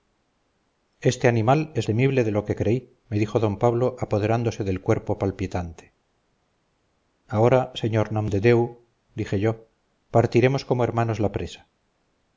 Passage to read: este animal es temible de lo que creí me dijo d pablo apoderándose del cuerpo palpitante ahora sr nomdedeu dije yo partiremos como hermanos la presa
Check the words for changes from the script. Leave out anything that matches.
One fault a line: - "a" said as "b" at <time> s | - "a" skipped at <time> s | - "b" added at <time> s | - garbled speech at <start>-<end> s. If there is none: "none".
none